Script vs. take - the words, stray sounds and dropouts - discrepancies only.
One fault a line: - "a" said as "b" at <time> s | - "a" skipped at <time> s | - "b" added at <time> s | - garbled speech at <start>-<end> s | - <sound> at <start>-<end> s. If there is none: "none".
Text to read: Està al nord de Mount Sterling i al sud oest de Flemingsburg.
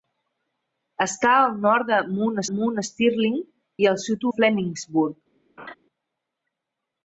- "Mount" added at 2.6 s
- "oest" skipped at 4.3 s
- laugh at 5.6-5.7 s